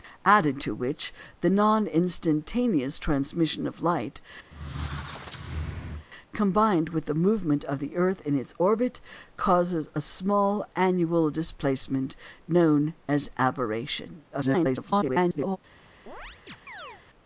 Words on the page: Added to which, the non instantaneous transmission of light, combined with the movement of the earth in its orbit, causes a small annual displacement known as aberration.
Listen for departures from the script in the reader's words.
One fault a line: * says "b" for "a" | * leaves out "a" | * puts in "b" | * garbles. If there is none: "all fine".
* garbles